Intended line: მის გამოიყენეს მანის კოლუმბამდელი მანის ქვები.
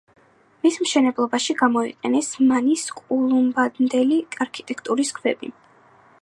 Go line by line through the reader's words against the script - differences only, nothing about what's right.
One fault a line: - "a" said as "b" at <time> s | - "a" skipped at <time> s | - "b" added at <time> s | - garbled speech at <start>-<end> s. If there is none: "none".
- "მშენებლობაში" added at 0.8 s
- "მანის" said as "არქიტექტურის" at 4.5 s